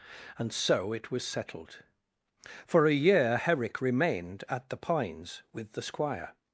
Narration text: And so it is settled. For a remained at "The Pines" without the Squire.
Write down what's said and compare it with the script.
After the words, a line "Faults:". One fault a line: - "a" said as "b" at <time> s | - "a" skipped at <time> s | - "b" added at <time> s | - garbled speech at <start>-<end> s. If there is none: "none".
And so it was settled. For a year Herrick remained at "The Pines" with the Squire.
Faults:
- "is" said as "was" at 1.1 s
- "year Herrick" added at 2.9 s
- "without" said as "with" at 5.5 s